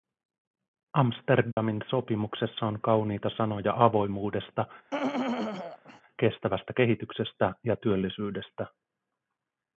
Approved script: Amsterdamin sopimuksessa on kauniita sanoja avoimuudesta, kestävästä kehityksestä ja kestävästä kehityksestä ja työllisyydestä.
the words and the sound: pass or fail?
fail